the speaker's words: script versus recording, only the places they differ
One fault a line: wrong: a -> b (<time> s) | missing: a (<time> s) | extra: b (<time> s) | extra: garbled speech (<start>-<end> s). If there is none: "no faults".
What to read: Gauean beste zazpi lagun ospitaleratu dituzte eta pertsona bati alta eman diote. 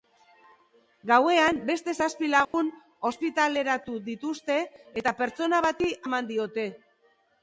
missing: alta (5.9 s)